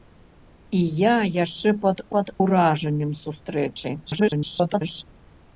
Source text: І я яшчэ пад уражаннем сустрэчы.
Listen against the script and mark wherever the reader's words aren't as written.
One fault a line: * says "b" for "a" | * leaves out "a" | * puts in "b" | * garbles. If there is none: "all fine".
* puts in "пад"
* garbles